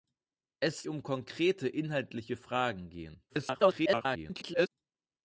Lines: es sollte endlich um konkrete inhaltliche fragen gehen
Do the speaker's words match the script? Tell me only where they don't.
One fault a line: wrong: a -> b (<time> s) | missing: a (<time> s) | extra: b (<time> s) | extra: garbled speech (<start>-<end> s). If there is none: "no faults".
missing: sollte endlich (0.8 s)
extra: garbled speech (3.3-4.7 s)